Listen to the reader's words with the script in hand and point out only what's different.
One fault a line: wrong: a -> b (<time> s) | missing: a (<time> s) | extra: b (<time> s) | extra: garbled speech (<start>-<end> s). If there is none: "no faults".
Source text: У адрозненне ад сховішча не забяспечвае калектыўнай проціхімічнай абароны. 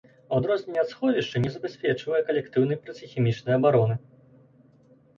no faults